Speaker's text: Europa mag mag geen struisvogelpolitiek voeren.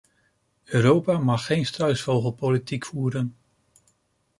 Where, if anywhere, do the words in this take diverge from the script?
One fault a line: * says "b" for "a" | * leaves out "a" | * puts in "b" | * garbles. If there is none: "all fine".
* leaves out "mag"